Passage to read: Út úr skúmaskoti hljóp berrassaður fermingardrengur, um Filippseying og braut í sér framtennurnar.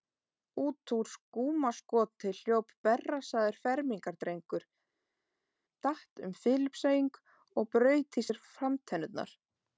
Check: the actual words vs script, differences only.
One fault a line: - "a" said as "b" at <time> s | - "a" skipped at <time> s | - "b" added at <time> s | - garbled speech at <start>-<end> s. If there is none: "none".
- "datt" added at 5.9 s